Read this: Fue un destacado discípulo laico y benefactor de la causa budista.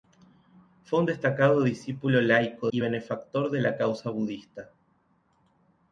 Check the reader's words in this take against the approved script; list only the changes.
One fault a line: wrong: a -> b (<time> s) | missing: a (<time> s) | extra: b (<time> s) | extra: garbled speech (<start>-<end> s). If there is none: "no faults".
no faults